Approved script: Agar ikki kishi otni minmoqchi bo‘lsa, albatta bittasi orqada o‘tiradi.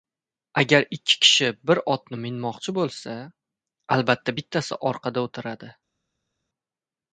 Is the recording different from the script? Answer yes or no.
yes